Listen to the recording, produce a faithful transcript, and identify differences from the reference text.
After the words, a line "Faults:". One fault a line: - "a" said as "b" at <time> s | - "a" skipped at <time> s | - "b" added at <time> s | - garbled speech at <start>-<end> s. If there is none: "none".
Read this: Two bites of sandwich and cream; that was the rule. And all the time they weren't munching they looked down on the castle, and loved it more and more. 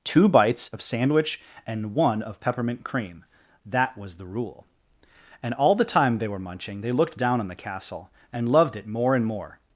Two bites of sandwich and one of peppermint cream; that was the rule. And all the time they were munching they looked down on the castle, and loved it more and more.
Faults:
- "one of peppermint" added at 1.9 s
- "weren't" said as "were" at 6.3 s